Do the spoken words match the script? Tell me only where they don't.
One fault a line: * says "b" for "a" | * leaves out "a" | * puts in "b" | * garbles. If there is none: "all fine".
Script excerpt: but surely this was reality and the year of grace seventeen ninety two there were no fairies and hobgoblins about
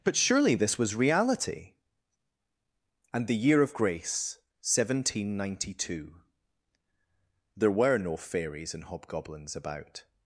all fine